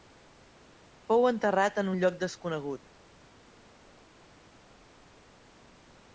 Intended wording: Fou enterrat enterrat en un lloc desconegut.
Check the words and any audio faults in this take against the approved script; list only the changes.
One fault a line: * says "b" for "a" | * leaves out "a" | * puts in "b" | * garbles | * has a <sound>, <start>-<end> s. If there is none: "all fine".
* leaves out "enterrat"